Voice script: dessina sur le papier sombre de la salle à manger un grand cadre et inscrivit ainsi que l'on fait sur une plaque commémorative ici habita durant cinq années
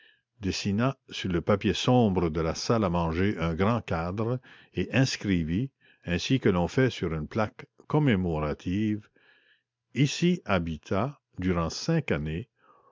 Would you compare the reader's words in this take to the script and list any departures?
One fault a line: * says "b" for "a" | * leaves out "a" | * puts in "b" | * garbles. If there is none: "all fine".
all fine